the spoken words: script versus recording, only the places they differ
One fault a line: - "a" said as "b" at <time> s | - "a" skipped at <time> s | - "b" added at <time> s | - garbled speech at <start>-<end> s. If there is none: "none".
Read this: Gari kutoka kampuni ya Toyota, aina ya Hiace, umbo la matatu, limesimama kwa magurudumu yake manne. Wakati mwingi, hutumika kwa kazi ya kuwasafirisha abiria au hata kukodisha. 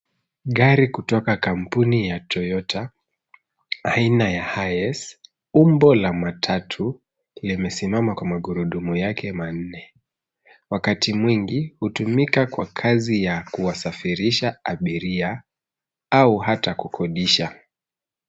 none